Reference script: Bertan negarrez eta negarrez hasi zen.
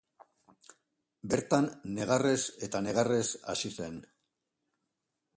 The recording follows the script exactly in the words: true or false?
true